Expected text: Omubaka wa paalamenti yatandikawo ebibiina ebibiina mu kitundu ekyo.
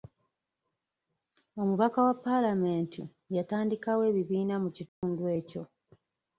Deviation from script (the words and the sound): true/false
true